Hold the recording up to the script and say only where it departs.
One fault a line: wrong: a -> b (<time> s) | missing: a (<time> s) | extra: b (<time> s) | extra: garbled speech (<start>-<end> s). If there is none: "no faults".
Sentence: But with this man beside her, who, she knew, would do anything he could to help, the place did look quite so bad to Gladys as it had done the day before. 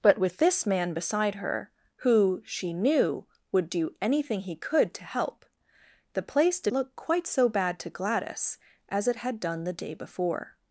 no faults